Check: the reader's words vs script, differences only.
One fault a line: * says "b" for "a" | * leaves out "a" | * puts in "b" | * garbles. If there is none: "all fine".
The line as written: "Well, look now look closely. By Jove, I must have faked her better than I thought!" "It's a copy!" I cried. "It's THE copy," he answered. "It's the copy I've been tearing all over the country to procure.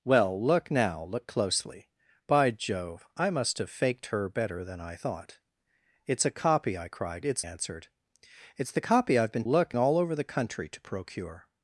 * leaves out "THE copy he"
* says "look" for "tearing"